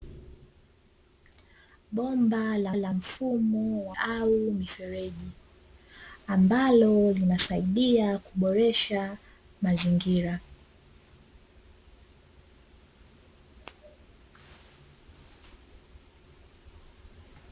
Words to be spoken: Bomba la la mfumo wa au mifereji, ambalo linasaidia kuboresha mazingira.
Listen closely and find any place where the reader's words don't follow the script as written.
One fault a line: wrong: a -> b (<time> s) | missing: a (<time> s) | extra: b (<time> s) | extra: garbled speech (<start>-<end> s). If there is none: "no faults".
no faults